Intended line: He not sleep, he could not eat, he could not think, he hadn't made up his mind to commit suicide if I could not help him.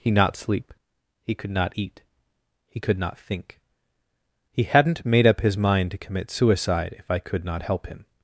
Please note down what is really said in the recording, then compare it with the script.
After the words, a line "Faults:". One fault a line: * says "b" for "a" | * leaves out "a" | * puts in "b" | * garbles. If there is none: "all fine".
He not sleep, he could not eat, he could not think, he hadn't made up his mind to commit suicide if I could not help him.
Faults:
all fine